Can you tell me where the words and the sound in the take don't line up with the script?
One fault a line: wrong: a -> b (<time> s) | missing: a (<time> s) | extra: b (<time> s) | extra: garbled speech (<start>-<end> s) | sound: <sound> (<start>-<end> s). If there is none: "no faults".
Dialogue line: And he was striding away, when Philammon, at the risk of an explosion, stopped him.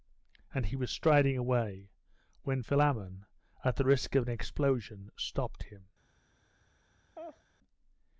sound: laugh (7.1-7.4 s)